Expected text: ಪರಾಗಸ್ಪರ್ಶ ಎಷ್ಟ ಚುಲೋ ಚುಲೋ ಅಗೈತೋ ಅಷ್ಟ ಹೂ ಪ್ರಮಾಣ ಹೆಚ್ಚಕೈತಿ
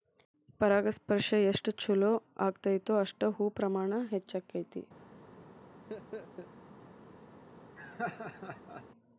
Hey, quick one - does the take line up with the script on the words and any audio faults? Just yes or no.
no